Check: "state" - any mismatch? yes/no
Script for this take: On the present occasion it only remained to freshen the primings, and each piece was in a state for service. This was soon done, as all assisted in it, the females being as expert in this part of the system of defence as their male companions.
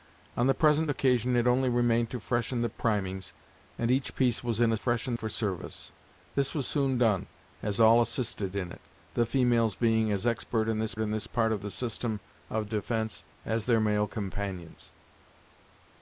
yes